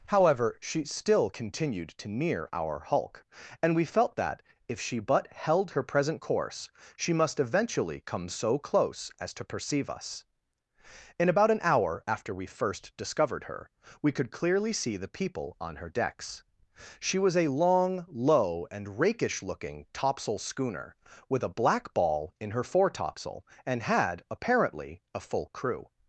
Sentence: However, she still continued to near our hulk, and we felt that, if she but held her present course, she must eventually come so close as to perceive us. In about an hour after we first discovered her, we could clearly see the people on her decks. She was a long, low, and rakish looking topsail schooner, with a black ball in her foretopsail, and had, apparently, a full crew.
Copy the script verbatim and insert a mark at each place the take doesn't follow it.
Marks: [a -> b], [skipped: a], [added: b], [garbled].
However, she still continued to near our hulk, and we felt that, if she but held her present course, she must eventually come so close as to perceive us. In about an hour after we first discovered her, we could clearly see the people on her decks. She was a long, low, and rakish looking topsail schooner, with a black ball in her foretopsail, and had, apparently, a full crew.